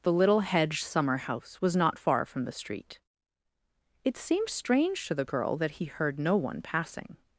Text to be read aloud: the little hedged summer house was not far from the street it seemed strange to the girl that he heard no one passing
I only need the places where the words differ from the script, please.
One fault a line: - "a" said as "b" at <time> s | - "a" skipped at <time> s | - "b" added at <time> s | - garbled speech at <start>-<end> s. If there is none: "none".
none